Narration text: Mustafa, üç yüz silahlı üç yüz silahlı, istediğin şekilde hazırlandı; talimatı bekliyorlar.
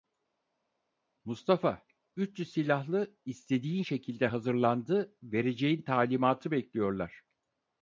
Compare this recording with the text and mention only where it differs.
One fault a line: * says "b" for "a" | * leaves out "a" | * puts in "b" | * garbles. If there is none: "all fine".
* leaves out "üç yüz silahlı"
* puts in "vereceğin"